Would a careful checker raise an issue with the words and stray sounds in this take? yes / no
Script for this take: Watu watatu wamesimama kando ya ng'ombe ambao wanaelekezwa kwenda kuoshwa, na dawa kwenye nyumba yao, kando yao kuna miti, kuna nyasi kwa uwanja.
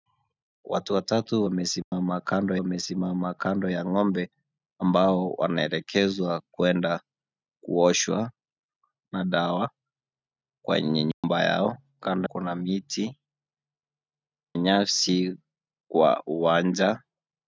yes